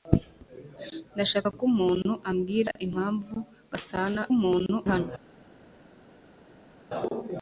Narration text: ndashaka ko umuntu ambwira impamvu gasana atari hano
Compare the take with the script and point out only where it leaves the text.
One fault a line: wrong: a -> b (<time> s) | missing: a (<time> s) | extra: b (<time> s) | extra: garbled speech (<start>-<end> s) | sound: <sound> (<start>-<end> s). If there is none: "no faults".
wrong: atari -> umuntu (4.4 s)